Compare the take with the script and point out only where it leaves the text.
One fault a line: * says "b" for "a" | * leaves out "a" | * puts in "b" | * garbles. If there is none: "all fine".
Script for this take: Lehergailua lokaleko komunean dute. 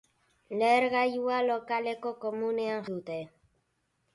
all fine